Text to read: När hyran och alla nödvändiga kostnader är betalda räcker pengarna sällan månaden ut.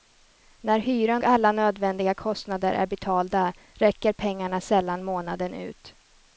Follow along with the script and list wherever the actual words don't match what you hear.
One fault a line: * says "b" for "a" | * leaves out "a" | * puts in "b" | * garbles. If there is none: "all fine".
* leaves out "och"